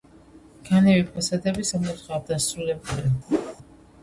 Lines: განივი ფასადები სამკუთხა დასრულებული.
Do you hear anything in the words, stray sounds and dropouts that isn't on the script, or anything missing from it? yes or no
yes